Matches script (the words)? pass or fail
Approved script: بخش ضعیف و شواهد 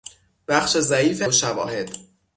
pass